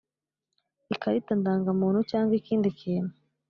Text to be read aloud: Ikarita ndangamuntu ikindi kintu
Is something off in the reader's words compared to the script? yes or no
yes